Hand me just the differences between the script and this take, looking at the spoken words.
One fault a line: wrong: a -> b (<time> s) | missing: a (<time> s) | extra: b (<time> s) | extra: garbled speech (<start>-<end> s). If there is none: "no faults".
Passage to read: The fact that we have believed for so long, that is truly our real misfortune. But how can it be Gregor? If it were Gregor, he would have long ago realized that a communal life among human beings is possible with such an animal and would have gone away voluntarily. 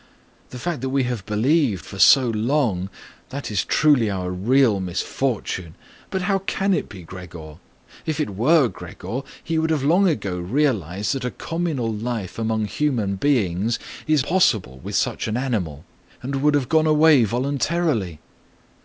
no faults